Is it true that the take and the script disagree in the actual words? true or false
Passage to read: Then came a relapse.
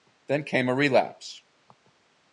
false